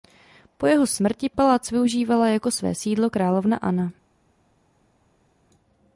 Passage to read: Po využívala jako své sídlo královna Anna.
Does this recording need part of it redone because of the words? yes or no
yes